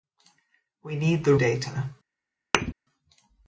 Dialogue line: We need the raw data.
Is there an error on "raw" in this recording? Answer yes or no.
yes